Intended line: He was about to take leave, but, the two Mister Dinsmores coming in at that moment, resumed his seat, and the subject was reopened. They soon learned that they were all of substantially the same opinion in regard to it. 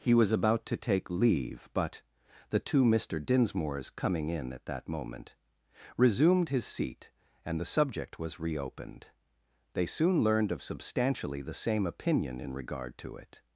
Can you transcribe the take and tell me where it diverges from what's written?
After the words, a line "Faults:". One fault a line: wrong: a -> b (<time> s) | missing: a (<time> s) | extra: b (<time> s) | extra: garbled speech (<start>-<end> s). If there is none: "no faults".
He was about to take leave, but, the two Mister Dinsmores coming in at that moment, resumed his seat, and the subject was reopened. They soon learned of substantially the same opinion in regard to it.
Faults:
missing: that they were all (10.5 s)